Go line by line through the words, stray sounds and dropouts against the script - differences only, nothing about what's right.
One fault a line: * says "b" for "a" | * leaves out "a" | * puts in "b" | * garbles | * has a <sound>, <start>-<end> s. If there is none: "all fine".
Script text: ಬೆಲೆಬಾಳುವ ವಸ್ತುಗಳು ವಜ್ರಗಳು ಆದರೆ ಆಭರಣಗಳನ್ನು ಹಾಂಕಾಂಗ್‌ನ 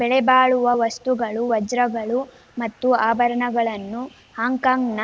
* says "ಮತ್ತು" for "ಆದರೆ"